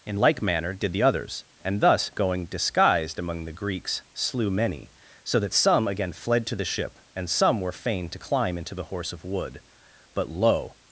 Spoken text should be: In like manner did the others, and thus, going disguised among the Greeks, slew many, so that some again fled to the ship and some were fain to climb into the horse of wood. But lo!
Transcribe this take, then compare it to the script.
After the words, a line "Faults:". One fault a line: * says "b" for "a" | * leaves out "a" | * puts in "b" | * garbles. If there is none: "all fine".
In like manner did the others, and thus, going disguised among the Greeks, slew many, so that some again fled to the ship and some were fain to climb into the horse of wood. But lo!
Faults:
all fine